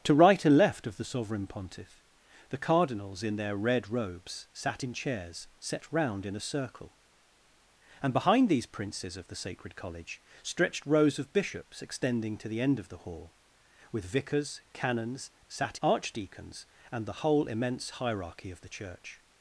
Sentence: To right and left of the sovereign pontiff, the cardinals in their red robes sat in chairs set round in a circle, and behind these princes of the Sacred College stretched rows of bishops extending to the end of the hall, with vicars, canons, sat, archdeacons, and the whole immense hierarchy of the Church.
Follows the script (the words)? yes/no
yes